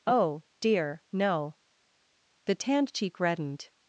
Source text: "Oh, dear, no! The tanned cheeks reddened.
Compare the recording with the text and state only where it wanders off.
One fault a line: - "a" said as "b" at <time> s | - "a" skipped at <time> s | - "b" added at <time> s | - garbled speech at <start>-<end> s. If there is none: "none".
- "cheeks" said as "cheek" at 2.9 s